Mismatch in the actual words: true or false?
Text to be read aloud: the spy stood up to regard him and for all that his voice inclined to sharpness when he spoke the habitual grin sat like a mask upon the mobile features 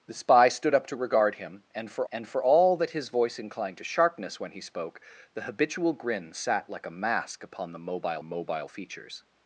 true